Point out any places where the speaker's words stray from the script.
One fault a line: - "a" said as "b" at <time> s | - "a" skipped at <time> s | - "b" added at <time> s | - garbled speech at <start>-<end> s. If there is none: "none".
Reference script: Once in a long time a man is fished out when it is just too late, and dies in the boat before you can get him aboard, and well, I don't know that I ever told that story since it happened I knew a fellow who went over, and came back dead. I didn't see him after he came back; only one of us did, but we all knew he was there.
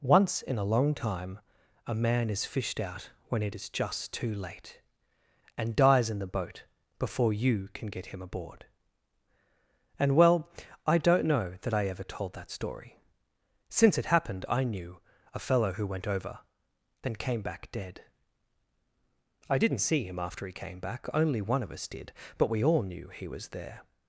- "and" said as "then" at 17.0 s